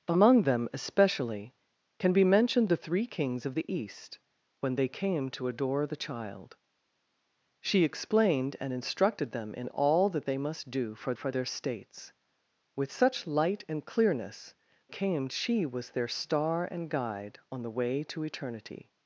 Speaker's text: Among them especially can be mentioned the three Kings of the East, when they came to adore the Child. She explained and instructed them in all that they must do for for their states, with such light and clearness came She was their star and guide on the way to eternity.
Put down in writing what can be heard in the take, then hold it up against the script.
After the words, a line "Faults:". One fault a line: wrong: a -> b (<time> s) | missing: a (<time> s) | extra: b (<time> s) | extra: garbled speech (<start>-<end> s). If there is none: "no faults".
Among them especially can be mentioned the three Kings of the East, when they came to adore the Child. She explained and instructed them in all that they must do for for their states, with such light and clearness came She was their star and guide on the way to eternity.
Faults:
no faults